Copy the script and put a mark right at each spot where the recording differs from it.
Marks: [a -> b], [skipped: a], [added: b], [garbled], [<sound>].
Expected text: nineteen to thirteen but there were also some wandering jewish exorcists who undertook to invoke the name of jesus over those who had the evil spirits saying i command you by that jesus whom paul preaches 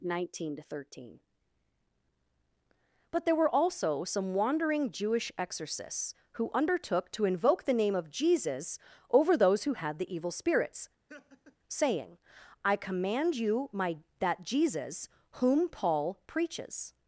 nineteen to thirteen but there were also some wandering jewish exorcists who undertook to invoke the name of jesus over those who had the evil spirits [laugh] saying i command you [by -> my] that jesus whom paul preaches